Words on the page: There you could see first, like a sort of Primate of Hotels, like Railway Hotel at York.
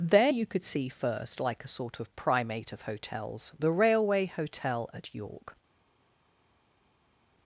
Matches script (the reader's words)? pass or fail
fail